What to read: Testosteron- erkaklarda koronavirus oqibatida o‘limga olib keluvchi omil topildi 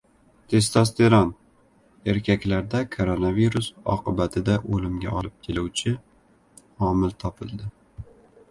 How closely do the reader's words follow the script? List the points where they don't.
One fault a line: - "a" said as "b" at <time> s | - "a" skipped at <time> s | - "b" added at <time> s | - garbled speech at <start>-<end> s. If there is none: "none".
none